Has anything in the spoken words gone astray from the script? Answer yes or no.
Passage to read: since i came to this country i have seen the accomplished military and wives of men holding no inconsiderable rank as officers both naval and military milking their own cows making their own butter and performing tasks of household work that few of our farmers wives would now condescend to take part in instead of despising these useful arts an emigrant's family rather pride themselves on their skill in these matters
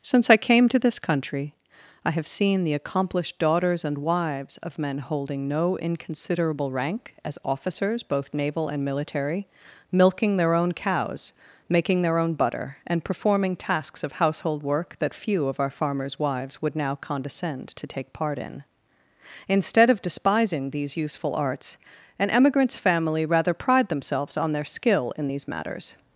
yes